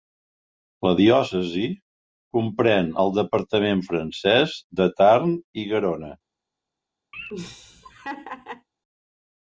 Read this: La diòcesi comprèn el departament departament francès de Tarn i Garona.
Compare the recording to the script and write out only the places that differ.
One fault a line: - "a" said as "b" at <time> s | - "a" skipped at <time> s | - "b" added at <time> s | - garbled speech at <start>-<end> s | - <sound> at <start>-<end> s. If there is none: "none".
- "departament" skipped at 3.8 s
- laugh at 7.1-8.7 s